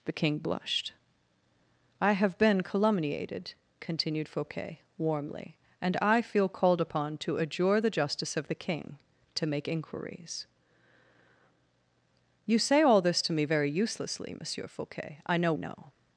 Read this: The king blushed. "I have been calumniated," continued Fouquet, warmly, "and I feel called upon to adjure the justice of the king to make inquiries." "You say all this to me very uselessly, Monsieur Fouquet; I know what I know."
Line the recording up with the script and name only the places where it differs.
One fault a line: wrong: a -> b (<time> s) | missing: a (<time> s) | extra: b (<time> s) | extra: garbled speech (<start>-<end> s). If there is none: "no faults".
missing: what I (15.5 s)